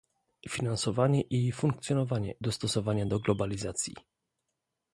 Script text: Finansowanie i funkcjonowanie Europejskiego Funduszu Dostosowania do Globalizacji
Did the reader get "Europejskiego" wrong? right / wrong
wrong